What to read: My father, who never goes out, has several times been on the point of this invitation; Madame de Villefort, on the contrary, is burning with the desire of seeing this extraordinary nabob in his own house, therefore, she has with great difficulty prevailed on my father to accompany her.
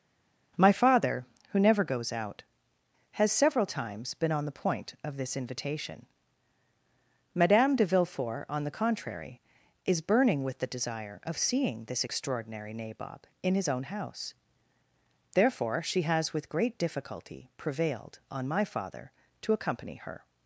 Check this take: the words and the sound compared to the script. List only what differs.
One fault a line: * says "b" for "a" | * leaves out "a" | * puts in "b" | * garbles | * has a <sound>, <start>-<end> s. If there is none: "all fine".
all fine